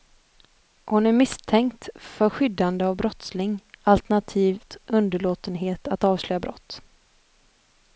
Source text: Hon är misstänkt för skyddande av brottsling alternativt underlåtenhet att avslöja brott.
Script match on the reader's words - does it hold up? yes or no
yes